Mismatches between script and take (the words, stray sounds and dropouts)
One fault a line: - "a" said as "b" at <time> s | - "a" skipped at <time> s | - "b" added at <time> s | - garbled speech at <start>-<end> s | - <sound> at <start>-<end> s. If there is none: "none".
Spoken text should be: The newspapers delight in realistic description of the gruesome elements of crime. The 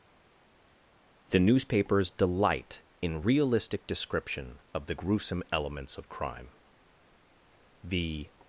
none